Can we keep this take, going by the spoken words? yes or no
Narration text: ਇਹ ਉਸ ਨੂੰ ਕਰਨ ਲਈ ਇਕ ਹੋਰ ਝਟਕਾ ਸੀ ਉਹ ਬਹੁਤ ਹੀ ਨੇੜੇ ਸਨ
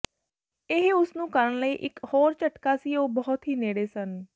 yes